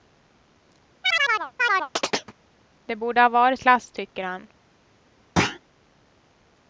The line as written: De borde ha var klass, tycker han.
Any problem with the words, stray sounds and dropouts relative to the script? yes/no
yes